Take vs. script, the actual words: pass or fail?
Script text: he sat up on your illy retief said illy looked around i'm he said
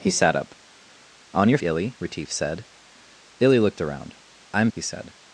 pass